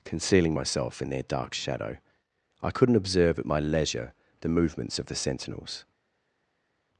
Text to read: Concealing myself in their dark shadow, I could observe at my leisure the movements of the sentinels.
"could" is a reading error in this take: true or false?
true